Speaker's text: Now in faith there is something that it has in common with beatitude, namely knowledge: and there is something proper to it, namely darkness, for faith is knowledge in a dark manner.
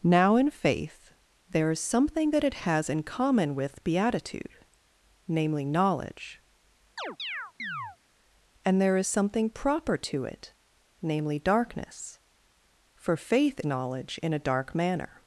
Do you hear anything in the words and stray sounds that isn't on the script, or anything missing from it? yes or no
yes